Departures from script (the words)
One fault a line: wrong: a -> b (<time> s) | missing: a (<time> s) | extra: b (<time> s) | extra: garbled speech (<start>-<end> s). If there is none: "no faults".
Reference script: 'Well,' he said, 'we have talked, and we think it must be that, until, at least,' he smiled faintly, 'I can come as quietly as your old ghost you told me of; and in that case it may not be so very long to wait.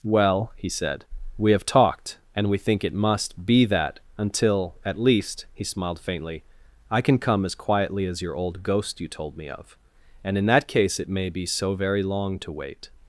missing: not (11.3 s)